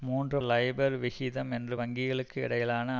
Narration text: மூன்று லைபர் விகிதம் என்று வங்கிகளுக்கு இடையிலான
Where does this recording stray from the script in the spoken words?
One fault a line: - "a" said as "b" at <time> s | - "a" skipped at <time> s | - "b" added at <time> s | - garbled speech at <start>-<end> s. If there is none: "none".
none